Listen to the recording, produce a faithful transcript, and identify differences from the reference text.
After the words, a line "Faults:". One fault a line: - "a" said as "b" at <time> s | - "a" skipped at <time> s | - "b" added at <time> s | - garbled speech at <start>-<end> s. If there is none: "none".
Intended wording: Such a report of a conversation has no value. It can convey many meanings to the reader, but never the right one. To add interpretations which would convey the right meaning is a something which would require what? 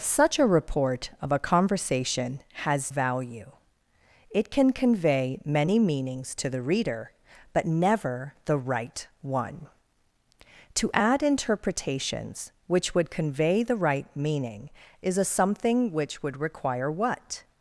Such a report of a conversation has value. It can convey many meanings to the reader, but never the right one. To add interpretations which would convey the right meaning is a something which would require what?
Faults:
- "no" skipped at 2.9 s